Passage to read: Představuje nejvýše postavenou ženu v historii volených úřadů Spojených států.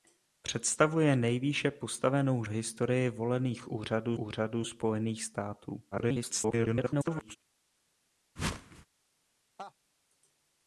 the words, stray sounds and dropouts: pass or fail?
fail